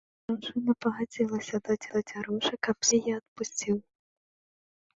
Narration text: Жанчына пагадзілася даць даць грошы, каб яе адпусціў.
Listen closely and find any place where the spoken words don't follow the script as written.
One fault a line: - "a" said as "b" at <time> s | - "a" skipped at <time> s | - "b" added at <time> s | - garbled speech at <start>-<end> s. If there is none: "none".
none